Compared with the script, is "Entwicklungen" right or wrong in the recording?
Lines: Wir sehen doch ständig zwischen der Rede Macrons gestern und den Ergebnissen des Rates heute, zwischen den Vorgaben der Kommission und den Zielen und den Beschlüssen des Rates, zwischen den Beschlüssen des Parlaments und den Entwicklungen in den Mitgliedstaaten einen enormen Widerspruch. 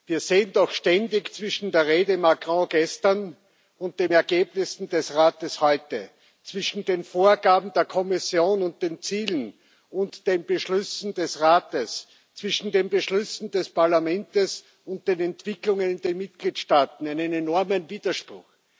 right